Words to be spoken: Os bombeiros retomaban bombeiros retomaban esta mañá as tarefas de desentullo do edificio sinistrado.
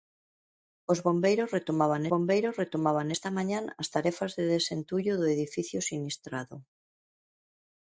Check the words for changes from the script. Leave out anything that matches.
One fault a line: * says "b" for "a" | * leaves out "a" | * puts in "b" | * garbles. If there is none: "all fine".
all fine